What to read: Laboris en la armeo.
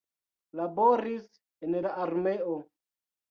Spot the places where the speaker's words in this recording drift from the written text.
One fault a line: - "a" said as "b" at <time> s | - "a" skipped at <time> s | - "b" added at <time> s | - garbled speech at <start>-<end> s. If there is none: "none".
none